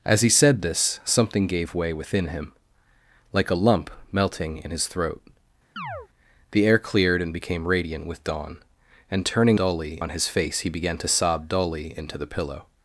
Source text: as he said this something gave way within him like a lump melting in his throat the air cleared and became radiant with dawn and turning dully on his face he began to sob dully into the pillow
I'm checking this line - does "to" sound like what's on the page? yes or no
yes